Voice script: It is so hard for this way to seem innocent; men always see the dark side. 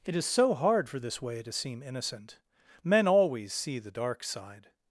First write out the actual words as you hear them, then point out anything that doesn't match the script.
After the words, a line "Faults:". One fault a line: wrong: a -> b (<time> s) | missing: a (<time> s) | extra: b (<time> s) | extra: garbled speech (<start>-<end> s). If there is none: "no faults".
It is so hard for this way to seem innocent; men always see the dark side.
Faults:
no faults